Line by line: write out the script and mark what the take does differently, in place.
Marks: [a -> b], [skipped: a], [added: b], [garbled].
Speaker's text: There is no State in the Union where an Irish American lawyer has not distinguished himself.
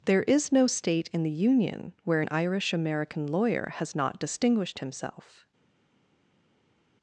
There is no State in the Union where an Irish American lawyer has not distinguished himself.